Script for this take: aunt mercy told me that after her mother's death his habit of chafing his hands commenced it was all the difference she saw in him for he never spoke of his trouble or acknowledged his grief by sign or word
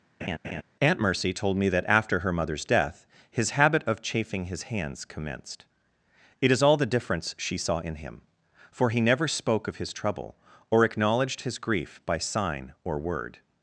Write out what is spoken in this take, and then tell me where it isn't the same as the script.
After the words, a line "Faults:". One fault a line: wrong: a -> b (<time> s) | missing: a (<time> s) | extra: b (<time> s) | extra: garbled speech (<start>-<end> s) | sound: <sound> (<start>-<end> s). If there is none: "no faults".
aunt mercy told me that after her mother's death his habit of chafing his hands commenced it is all the difference she saw in him for he never spoke of his trouble or acknowledged his grief by sign or word
Faults:
sound: laugh (0.2-0.6 s)
wrong: was -> is (6.5 s)